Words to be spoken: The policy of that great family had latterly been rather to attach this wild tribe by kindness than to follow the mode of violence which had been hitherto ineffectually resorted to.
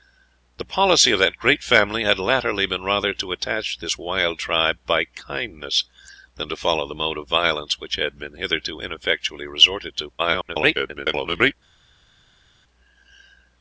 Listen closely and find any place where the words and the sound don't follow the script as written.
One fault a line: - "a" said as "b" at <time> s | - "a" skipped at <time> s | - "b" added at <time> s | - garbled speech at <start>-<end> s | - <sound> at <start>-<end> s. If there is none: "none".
- garbled speech at 10.2-11.5 s